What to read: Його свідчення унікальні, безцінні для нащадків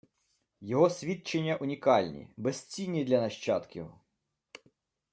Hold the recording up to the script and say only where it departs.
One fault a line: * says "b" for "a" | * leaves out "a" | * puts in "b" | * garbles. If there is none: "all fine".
all fine